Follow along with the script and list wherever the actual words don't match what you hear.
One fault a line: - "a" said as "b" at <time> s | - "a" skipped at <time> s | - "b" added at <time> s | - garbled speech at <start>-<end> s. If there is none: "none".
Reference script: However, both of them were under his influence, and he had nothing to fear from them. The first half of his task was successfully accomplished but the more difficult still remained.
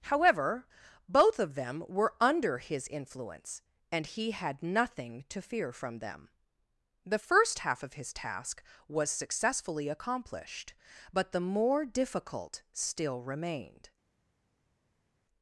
none